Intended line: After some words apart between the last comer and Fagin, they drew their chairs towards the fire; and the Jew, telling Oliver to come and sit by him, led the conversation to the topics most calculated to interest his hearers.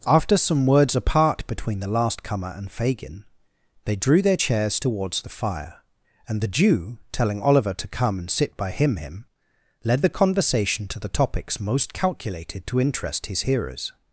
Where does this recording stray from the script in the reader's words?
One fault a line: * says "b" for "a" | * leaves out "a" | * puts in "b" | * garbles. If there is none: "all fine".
* puts in "him"